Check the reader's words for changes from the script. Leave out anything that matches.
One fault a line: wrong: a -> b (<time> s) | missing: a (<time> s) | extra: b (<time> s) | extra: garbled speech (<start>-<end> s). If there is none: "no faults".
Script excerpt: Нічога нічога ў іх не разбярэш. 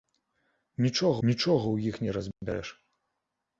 no faults